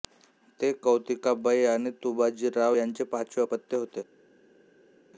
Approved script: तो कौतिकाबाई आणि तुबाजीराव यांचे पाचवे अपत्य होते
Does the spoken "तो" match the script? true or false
false